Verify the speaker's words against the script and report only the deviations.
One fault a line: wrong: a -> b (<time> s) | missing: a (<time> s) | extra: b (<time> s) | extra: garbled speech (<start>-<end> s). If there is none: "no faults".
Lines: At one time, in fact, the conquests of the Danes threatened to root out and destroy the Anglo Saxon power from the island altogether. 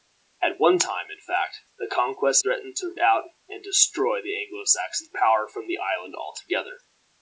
missing: of the Danes (2.4 s)
missing: root (2.9 s)